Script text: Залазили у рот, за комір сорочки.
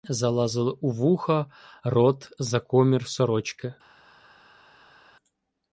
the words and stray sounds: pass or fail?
fail